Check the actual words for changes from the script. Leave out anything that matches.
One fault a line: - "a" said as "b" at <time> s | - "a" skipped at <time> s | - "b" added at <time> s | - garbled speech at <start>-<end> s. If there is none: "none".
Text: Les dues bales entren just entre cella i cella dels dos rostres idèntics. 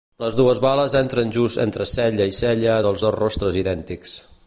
none